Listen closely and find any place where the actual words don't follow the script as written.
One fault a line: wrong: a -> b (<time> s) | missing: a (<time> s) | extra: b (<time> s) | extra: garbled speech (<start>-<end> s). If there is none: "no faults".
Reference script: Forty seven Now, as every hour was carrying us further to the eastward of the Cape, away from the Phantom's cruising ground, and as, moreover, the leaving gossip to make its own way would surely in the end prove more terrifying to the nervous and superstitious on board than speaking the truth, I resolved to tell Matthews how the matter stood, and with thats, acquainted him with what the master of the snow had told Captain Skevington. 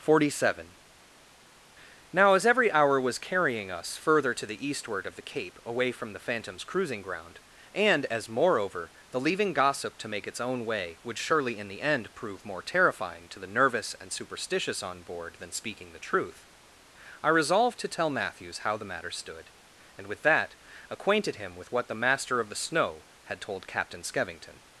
wrong: thats -> that (20.2 s)